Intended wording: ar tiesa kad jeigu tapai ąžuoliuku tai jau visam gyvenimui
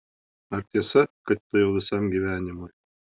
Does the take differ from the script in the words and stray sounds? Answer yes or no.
yes